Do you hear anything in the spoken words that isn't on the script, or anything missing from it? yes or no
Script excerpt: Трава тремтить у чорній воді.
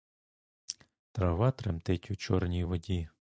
no